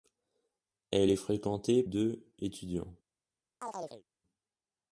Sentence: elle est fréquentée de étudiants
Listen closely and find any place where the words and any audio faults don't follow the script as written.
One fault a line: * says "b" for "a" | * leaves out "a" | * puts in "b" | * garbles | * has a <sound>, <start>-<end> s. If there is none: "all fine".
* has a chirp, 3.6-4.0 s